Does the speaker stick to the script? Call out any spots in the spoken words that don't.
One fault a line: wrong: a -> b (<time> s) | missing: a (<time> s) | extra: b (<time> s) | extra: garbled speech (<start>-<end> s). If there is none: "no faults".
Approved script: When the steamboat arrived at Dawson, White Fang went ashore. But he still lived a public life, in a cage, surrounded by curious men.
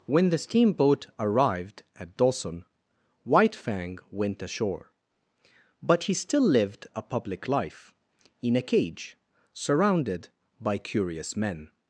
no faults